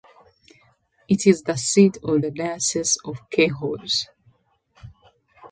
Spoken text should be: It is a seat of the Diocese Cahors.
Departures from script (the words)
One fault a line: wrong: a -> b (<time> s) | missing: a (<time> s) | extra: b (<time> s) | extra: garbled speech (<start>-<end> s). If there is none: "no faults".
wrong: a -> the (1.4 s)
extra: of (3.0 s)